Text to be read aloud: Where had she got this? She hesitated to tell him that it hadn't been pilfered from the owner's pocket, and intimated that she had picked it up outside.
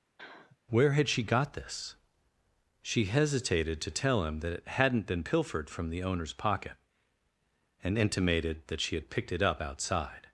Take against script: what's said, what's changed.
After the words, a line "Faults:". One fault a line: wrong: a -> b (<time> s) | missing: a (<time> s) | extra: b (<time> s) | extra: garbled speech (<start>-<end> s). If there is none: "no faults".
Where had she got this? She hesitated to tell him that it hadn't been pilfered from the owner's pocket, and intimated that she had picked it up outside.
Faults:
no faults